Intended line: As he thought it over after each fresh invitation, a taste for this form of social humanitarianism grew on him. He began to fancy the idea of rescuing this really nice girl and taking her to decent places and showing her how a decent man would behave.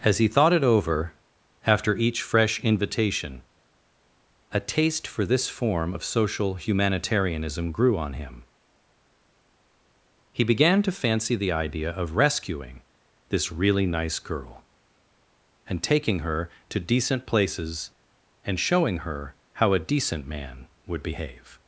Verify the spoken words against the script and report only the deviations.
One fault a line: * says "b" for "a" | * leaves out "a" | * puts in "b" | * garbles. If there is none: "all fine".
all fine